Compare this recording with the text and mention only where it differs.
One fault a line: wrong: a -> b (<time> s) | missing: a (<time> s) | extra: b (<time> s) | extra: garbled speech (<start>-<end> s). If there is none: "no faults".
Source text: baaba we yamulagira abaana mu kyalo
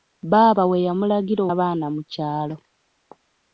no faults